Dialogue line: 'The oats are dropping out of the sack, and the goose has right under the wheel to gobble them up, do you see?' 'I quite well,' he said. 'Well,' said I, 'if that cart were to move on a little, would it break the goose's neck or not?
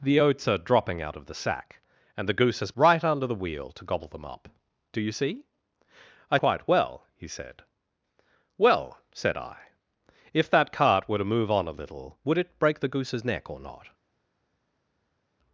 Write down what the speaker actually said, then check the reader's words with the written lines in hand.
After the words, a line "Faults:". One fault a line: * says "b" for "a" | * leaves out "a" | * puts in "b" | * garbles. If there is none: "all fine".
'The oats are dropping out of the sack, and the goose has right under the wheel to gobble them up, do you see?' 'I quite well,' he said. 'Well,' said I, 'if that cart were to move on a little, would it break the goose's neck or not?
Faults:
all fine